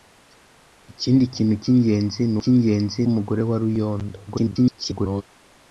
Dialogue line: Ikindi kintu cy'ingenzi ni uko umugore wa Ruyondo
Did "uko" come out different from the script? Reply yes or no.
yes